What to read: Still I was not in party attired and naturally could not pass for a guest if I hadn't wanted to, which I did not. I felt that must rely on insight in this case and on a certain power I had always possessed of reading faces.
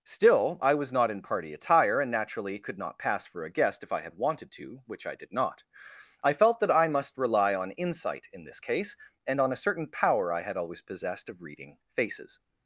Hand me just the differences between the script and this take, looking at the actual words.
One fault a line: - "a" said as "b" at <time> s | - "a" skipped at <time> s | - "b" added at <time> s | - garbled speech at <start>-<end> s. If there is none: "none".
- "attired" said as "attire" at 1.5 s
- "hadn't" said as "had" at 4.0 s
- "I" added at 6.7 s